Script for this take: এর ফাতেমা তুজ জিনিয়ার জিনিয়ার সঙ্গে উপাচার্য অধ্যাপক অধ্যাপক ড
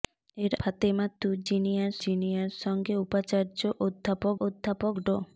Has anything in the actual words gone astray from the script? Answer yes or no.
no